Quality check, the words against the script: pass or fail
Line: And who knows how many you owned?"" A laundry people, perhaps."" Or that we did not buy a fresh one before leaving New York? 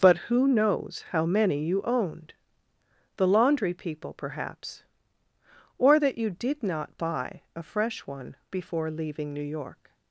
fail